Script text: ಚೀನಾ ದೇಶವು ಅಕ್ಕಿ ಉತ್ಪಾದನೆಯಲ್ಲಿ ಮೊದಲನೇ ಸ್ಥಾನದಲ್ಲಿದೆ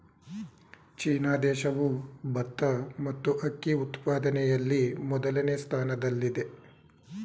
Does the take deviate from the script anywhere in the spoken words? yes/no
yes